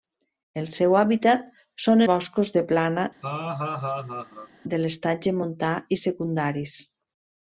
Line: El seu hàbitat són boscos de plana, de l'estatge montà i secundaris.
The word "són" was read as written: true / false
true